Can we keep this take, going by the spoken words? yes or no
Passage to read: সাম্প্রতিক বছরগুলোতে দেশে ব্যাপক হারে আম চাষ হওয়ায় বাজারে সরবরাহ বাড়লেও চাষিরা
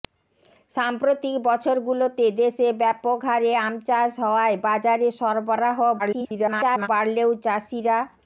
no